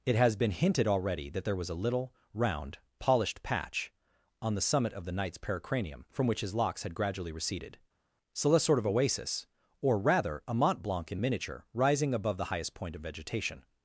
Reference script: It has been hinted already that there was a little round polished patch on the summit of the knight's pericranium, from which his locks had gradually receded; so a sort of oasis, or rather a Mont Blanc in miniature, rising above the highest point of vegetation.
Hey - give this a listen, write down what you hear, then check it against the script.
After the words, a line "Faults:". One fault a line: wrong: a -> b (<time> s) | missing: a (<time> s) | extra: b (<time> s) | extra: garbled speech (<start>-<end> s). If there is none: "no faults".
It has been hinted already that there was a little round polished patch on the summit of the knight's pericranium, from which his locks had gradually receded; so a sort of oasis, or rather a Mont Blanc in miniature, rising above the highest point of vegetation.
Faults:
no faults